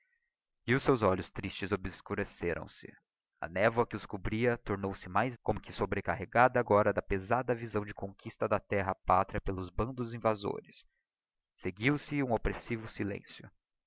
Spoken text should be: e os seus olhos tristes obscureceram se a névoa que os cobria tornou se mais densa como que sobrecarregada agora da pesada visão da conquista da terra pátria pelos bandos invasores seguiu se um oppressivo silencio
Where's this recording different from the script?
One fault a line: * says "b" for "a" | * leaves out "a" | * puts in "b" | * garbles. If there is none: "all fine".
* leaves out "densa"